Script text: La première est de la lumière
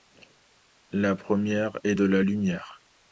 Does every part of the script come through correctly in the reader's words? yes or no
yes